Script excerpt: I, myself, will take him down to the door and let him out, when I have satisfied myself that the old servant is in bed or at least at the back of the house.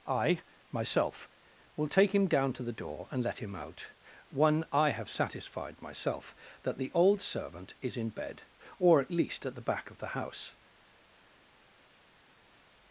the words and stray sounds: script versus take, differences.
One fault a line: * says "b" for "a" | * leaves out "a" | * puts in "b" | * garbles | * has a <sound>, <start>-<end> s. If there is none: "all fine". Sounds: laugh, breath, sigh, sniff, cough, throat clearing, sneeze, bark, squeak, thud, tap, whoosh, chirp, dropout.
* says "one" for "when"